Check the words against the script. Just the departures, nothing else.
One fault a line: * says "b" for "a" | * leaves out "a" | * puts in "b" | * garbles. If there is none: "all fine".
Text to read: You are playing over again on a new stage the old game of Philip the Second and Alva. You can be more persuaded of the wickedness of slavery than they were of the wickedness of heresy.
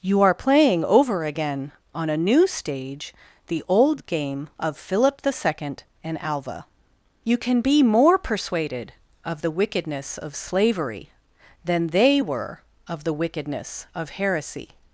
all fine